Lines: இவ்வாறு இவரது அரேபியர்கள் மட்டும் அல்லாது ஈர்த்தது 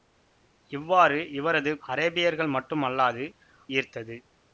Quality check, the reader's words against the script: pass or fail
pass